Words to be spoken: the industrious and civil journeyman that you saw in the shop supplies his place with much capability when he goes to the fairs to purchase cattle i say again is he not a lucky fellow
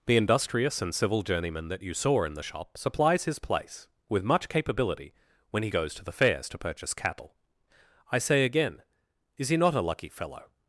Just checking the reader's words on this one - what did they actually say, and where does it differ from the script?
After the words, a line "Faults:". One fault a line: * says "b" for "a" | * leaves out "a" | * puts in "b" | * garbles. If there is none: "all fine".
the industrious and civil journeyman that you saw in the shop supplies his place with much capability when he goes to the fairs to purchase cattle i say again is he not a lucky fellow
Faults:
all fine